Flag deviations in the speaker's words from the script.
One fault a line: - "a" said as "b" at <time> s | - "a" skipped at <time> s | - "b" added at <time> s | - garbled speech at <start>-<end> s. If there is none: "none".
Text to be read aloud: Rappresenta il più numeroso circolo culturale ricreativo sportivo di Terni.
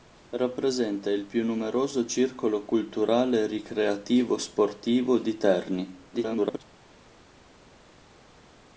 - garbled speech at 6.1-6.6 s